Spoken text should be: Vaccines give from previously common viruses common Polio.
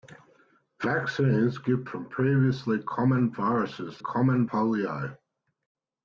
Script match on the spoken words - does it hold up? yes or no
yes